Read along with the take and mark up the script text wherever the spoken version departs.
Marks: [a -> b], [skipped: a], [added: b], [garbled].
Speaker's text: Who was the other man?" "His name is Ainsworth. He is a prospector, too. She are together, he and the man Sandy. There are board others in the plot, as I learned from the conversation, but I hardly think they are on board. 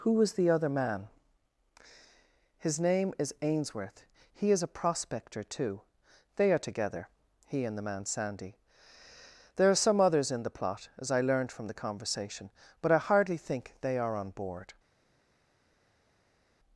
Who was the other man?" "His name is Ainsworth. He is a prospector, too. [She -> They] are together, he and the man Sandy. There are [board -> some] others in the plot, as I learned from the conversation, but I hardly think they are on board.